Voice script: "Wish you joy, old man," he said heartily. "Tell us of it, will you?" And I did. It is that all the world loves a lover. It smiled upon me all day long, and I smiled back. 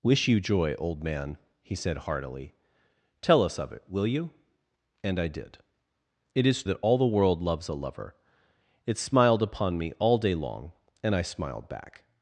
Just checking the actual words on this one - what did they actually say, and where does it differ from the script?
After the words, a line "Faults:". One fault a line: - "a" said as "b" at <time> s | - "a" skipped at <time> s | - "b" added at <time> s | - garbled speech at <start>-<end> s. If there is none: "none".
"Wish you joy, old man," he said heartily. "Tell us of it, will you?" And I did. It is that all the world loves a lover. It smiled upon me all day long, and I smiled back.
Faults:
none